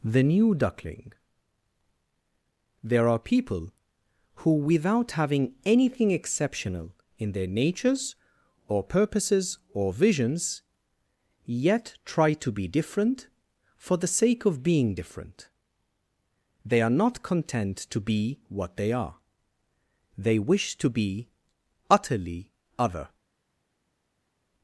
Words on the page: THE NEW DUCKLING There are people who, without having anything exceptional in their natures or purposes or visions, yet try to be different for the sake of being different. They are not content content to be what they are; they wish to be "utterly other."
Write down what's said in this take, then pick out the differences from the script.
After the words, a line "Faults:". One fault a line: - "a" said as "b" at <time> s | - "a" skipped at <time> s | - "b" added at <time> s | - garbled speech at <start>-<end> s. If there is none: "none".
THE NEW DUCKLING There are people who, without having anything exceptional in their natures or purposes or visions, yet try to be different for the sake of being different. They are not content to be what they are; they wish to be "utterly other."
Faults:
- "content" skipped at 17.8 s